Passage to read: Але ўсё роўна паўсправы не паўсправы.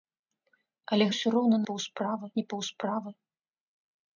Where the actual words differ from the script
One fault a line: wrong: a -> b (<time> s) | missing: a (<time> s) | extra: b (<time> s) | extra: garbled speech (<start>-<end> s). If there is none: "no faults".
no faults